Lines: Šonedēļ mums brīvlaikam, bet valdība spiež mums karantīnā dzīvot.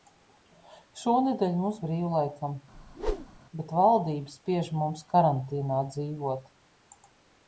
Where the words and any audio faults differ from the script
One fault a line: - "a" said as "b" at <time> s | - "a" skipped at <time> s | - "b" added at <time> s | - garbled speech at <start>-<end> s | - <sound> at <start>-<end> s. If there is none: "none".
- whoosh at 2.7-3.4 s